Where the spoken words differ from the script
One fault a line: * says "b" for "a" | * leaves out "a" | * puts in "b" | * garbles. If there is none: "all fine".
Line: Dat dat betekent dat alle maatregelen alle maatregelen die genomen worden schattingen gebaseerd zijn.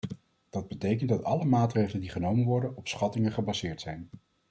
* leaves out "dat"
* leaves out "alle maatregelen"
* puts in "op"